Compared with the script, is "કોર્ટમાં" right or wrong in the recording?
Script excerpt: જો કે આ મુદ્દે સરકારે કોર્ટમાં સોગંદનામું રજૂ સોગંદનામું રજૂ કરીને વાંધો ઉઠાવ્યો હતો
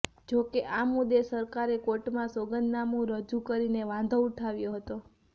right